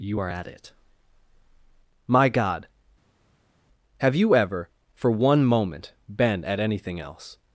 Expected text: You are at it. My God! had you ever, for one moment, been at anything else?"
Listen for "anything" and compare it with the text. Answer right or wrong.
right